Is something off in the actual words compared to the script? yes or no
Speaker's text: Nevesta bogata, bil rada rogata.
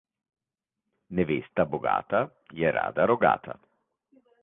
yes